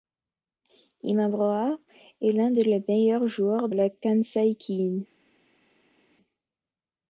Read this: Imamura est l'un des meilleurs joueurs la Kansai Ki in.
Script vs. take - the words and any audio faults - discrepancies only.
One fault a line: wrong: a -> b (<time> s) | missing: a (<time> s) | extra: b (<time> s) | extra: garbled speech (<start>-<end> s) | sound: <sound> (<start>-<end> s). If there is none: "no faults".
no faults